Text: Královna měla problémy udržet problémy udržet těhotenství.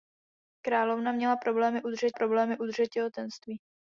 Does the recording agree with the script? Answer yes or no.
yes